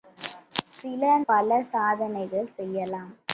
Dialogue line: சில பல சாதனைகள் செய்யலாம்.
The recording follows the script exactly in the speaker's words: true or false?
true